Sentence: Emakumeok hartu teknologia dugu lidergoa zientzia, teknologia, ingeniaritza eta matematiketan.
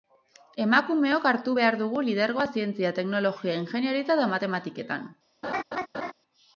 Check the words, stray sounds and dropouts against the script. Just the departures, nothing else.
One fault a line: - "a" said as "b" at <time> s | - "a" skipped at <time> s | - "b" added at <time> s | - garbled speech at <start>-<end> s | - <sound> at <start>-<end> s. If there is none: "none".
- "teknologia" said as "behar" at 1.6 s
- laugh at 5.4-6.1 s